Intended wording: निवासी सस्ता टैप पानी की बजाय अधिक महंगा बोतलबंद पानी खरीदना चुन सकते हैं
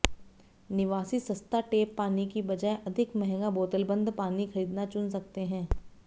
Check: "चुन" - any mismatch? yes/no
no